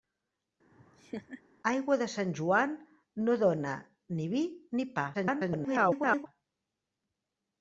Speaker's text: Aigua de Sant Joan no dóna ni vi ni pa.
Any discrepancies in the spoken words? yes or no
yes